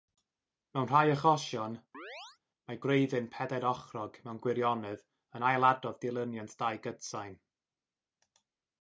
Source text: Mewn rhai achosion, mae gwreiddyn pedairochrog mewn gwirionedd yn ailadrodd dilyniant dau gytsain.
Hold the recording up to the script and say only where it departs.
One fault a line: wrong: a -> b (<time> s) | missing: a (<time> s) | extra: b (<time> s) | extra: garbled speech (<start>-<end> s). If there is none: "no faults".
no faults